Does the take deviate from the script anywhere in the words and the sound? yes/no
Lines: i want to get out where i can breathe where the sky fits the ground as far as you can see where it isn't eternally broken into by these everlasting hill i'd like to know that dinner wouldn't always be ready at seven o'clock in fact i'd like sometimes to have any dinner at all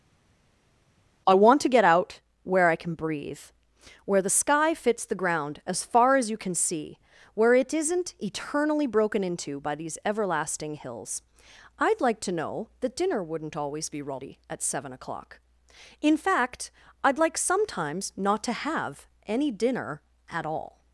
yes